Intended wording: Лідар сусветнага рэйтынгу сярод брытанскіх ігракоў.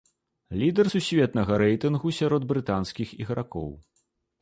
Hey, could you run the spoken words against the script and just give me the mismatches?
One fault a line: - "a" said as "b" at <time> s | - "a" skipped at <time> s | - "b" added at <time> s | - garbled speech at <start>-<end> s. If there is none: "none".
none